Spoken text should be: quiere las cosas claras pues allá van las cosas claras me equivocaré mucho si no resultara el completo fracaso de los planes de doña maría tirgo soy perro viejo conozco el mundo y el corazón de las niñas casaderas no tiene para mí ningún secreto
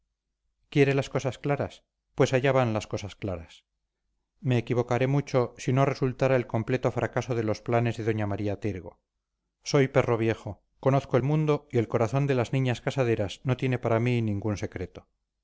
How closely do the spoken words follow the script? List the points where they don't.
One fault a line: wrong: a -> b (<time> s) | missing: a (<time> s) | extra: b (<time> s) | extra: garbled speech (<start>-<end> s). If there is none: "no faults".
no faults